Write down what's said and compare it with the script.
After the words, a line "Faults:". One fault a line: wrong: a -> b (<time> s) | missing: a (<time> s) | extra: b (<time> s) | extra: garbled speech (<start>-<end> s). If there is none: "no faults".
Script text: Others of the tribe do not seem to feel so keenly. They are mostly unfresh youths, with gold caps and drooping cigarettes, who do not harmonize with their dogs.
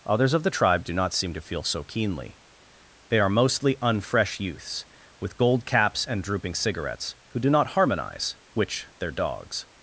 Others of the tribe do not seem to feel so keenly. They are mostly unfresh youths, with gold caps and drooping cigarettes, who do not harmonize which their dogs.
Faults:
wrong: with -> which (8.5 s)